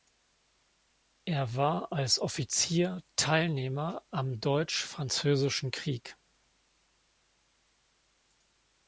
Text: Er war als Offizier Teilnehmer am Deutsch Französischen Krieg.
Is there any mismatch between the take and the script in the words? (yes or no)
no